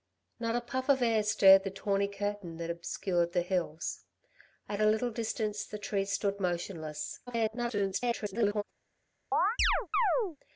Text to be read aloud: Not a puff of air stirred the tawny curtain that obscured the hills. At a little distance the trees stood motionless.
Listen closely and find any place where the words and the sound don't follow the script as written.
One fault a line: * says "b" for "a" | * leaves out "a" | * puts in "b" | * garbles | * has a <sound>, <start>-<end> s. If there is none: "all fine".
* garbles
* has a chirp, 9.3-10.4 s